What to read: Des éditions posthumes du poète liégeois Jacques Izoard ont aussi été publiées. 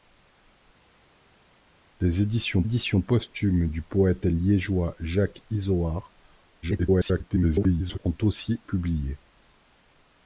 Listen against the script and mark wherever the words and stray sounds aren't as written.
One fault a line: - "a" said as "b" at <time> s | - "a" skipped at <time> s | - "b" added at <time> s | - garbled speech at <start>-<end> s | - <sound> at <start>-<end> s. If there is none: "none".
- "éditions" added at 2.6 s
- garbled speech at 6.6-8.0 s
- "été" skipped at 8.6 s